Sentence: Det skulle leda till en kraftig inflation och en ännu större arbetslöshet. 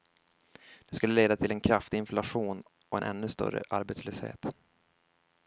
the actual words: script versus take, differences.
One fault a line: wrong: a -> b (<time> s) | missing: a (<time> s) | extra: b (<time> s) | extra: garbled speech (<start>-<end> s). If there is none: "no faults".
no faults